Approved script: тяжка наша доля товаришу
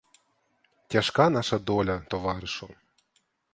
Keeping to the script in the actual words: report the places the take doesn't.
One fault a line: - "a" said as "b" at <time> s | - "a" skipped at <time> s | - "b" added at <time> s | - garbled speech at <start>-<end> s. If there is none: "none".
none